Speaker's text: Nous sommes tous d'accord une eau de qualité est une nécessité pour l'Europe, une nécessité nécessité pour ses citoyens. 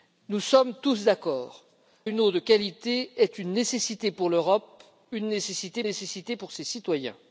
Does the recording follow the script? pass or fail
pass